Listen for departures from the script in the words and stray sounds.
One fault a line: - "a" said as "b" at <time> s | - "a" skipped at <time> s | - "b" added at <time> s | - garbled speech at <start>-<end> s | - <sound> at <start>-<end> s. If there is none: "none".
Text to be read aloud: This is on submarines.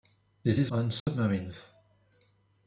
- dropout at 1.0-1.1 s